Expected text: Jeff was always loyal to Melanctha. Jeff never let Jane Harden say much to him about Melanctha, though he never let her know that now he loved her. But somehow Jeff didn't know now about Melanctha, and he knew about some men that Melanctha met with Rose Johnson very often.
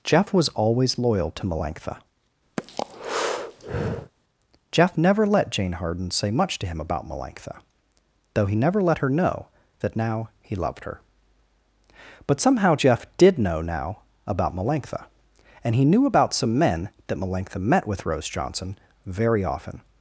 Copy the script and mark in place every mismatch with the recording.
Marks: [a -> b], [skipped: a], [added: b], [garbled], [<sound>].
Jeff was always loyal to Melanctha. [breath] Jeff never let Jane Harden say much to him about Melanctha, though he never let her know that now he loved her. But somehow Jeff [didn't -> did] know now about Melanctha, and he knew about some men that Melanctha met with Rose Johnson very often.